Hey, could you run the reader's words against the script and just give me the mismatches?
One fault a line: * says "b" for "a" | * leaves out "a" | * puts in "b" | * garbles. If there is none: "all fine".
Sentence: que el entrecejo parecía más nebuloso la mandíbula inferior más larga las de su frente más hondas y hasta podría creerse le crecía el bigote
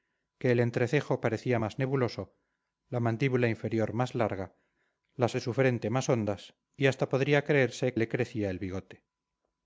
all fine